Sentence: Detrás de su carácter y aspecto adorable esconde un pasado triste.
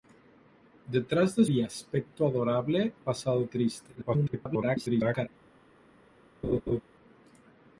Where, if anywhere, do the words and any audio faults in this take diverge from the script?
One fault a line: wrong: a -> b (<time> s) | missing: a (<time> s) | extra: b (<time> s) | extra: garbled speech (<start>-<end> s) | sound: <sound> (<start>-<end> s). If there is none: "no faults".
missing: su carácter (1.4 s)
missing: esconde un (2.9 s)
extra: garbled speech (3.9-5.3 s)
sound: laugh (6.4-6.8 s)